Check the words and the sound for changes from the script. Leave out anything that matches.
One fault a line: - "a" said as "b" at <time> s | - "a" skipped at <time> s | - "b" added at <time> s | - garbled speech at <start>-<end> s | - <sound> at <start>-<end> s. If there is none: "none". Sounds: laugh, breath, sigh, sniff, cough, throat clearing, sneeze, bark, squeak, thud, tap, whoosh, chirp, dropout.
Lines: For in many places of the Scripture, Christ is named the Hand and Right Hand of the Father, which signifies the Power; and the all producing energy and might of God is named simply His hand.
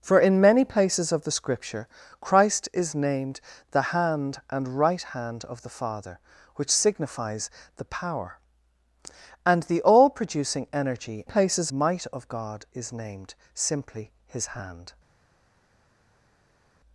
- "and" said as "places" at 11.2 s